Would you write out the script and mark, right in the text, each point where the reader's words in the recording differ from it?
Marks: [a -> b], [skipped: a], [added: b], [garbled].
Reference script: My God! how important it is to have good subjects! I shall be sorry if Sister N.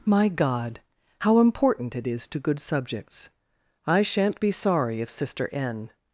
My God! how important it is to [skipped: have] good subjects! I [shall -> shan't] be sorry if Sister N.